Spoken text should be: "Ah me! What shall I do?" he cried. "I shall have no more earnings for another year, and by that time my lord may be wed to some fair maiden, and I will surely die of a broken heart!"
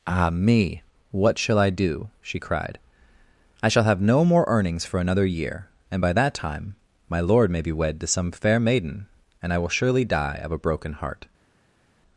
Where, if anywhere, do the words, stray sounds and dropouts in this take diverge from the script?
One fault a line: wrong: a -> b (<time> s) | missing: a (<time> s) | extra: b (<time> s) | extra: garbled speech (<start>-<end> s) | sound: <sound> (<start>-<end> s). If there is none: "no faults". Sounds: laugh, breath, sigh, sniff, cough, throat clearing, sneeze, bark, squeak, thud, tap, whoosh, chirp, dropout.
wrong: he -> she (2.2 s)